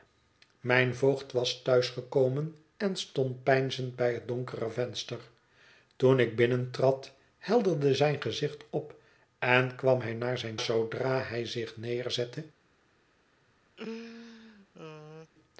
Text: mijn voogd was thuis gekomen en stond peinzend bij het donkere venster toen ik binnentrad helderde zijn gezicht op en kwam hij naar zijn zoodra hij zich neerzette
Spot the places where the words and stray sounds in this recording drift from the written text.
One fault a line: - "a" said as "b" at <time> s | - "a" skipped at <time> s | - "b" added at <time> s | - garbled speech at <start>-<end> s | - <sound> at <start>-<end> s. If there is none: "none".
- laugh at 13.8-15.3 s